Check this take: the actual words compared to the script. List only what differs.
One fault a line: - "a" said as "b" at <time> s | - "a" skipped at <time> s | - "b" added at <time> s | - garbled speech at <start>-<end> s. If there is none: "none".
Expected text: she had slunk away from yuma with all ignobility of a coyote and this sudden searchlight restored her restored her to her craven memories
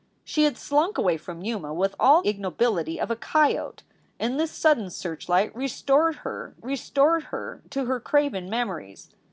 none